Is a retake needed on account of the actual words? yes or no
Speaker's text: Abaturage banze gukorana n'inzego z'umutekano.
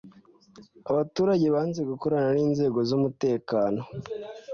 no